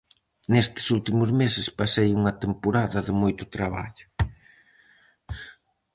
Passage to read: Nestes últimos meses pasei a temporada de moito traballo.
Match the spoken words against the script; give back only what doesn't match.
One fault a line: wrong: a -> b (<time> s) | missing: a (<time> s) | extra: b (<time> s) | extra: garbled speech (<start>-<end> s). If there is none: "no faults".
wrong: a -> unha (2.2 s)